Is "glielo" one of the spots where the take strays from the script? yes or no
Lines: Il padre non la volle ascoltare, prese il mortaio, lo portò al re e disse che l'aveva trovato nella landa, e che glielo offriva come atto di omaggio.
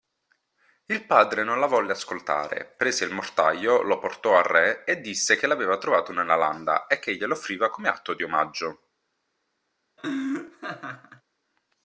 no